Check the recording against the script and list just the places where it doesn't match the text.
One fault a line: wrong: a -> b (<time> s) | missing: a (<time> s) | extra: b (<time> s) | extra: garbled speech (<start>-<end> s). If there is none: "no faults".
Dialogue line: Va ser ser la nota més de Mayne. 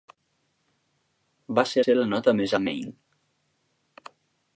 no faults